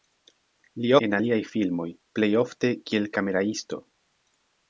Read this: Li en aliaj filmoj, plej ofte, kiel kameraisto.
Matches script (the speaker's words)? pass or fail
pass